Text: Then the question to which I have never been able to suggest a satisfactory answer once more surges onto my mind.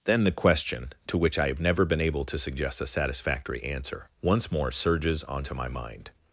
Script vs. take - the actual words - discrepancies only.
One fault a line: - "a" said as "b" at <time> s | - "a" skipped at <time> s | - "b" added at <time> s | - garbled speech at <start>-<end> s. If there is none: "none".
none